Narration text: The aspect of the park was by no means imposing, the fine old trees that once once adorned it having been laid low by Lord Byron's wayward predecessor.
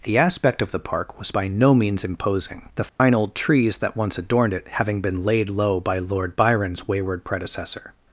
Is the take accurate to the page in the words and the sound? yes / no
no